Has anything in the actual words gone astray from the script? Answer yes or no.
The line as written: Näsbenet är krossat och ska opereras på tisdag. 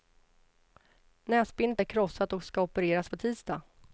no